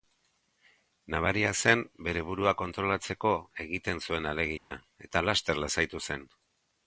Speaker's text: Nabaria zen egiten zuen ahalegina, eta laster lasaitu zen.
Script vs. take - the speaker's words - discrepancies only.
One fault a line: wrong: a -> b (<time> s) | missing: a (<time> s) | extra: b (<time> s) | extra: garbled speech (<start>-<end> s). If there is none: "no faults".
extra: bere burua kontrolatzeko (2.1 s)